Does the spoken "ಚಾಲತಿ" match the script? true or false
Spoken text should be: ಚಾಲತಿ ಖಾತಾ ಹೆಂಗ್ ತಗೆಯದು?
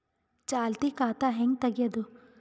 true